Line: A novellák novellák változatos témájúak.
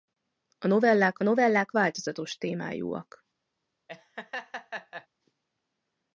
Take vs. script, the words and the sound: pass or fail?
fail